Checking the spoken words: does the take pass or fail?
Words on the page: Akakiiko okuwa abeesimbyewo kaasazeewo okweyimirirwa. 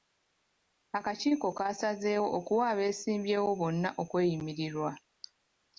fail